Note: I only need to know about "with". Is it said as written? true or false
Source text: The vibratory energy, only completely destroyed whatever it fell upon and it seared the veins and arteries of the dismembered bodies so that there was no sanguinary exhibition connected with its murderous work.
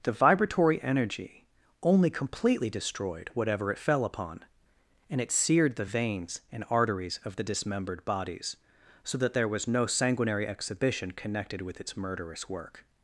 true